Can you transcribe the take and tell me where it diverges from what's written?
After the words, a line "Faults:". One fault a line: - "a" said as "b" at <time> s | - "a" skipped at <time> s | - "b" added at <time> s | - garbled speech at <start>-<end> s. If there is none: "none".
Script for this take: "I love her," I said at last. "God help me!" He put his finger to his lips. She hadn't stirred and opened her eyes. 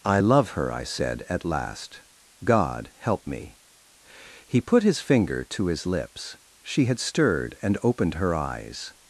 "I love her," I said at last. "God help me!" He put his finger to his lips. She had stirred and opened her eyes.
Faults:
- "hadn't" said as "had" at 6.9 s